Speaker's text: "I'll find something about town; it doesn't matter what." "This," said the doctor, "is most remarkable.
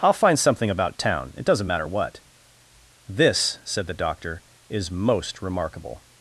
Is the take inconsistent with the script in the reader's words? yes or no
no